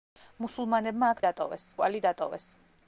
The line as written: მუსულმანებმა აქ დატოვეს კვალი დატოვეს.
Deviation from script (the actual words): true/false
false